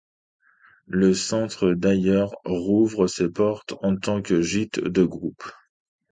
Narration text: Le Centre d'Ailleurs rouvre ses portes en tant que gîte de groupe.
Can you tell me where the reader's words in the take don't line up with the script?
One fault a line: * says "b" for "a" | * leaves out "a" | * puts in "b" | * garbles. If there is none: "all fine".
all fine